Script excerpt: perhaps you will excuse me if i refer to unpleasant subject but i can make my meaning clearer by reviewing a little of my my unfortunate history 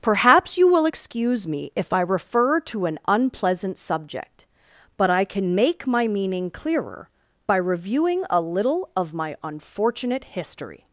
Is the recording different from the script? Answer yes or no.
yes